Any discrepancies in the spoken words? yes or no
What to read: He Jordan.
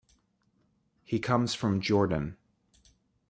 yes